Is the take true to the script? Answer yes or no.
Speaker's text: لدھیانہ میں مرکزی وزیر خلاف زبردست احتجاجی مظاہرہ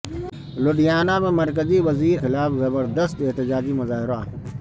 yes